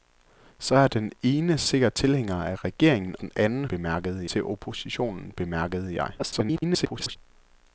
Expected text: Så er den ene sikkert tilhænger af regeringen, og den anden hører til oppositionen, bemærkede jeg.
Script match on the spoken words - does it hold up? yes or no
no